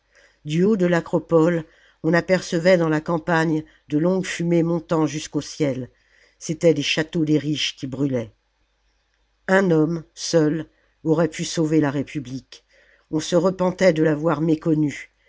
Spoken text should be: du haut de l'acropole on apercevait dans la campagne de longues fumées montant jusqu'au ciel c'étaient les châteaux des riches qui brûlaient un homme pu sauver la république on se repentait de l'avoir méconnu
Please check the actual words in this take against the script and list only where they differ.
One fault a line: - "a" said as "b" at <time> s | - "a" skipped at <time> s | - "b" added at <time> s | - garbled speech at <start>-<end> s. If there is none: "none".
- "seul aurait" added at 10.1 s